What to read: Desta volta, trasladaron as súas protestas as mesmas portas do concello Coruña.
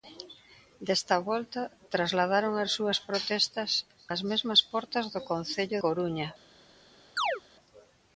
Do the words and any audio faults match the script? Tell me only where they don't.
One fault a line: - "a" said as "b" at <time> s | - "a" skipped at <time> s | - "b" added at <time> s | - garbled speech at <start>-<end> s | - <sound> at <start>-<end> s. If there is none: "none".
- chirp at 7.2-7.4 s